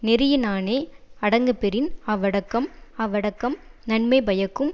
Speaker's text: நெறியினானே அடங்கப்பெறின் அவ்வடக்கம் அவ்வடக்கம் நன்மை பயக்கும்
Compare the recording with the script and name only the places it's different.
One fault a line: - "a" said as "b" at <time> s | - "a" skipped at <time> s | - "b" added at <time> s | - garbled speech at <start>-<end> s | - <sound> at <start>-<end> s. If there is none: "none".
none